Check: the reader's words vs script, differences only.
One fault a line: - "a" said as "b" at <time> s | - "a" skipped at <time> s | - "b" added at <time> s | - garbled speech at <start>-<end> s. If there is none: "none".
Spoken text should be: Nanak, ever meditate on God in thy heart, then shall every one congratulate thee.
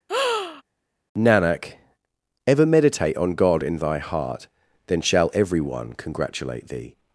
none